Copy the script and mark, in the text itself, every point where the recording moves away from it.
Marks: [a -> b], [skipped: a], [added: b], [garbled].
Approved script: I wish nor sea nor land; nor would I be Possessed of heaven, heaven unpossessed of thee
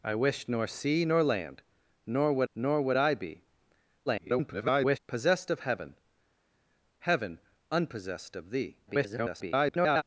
I wish nor sea nor land; nor would [added: nor would] I be [garbled] Possessed of heaven, heaven unpossessed of thee [garbled]